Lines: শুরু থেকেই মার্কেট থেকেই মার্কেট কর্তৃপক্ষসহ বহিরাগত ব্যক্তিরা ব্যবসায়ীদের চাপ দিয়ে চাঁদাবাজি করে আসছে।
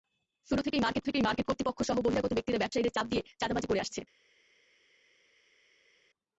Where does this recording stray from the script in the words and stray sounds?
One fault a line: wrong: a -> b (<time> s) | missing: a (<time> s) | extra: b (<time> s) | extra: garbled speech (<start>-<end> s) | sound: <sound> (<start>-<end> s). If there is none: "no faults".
no faults